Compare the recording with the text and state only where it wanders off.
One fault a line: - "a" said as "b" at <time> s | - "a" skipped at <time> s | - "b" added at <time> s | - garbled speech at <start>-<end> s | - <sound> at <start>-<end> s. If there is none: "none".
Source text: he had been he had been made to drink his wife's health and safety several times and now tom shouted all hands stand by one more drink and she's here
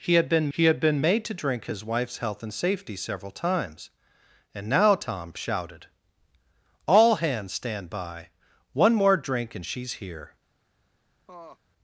- laugh at 11.3-11.6 s